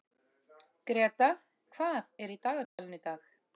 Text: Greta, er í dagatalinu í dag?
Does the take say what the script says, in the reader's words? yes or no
no